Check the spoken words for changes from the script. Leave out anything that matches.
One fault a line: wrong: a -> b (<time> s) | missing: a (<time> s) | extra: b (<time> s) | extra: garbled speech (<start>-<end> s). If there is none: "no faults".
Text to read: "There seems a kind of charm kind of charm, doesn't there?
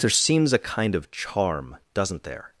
missing: kind of charm (1.8 s)